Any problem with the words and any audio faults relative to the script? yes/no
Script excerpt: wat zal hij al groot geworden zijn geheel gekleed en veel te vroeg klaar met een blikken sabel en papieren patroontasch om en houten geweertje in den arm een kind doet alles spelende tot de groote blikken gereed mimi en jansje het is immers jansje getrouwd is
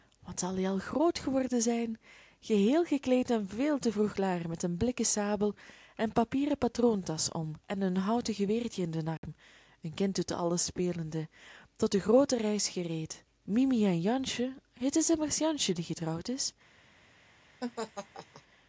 yes